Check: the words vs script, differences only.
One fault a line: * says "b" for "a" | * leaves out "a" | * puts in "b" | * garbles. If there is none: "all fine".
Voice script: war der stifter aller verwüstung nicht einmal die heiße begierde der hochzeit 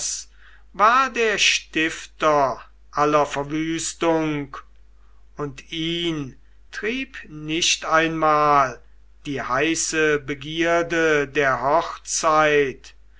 * puts in "und ihn trieb"